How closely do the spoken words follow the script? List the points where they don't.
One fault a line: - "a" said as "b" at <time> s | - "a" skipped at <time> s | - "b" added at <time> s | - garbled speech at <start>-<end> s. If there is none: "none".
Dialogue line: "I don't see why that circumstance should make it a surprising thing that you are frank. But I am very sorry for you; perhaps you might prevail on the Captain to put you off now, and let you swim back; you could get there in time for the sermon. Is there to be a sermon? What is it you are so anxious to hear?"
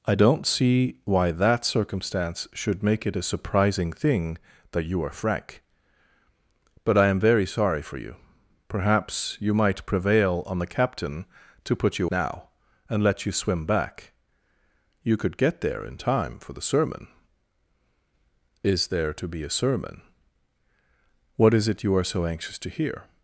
- "off" skipped at 12.1 s